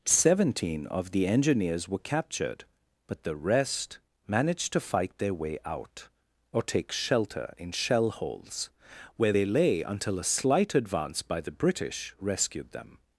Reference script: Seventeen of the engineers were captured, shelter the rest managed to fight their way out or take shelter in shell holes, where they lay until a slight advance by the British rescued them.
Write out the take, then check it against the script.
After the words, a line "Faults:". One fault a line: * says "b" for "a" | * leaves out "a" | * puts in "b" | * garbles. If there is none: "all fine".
Seventeen of the engineers were captured, but the rest managed to fight their way out or take shelter in shell holes, where they lay until a slight advance by the British rescued them.
Faults:
* says "but" for "shelter"